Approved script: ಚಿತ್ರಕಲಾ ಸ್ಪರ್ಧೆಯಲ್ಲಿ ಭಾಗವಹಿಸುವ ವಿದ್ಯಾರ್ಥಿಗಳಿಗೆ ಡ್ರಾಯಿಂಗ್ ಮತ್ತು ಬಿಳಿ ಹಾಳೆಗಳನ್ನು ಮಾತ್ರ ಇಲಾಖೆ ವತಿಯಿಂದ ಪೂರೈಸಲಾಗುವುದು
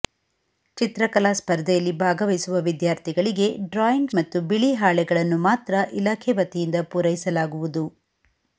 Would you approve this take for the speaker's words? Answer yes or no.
yes